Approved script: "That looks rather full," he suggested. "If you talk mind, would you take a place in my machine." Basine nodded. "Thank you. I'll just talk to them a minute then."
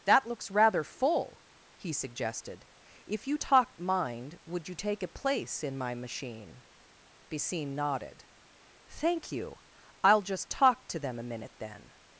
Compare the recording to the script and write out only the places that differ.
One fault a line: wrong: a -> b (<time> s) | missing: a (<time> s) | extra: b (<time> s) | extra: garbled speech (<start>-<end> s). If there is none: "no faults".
no faults